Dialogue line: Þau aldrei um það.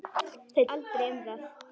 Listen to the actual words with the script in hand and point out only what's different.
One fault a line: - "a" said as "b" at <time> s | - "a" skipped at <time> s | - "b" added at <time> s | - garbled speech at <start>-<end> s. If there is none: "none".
none